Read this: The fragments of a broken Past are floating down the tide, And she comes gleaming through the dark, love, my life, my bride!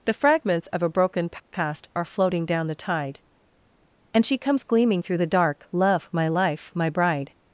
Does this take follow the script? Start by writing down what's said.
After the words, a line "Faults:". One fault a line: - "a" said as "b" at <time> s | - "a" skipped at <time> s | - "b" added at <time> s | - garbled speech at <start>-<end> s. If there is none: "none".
The fragments of a broken Past are floating down the tide, And she comes gleaming through the dark, love, my life, my bride!
Faults:
none